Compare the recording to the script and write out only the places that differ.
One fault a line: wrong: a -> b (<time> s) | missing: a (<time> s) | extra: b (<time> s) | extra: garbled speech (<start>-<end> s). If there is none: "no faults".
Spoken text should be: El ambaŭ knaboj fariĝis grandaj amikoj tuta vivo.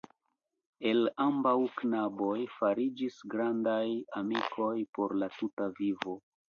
extra: por la (5.0 s)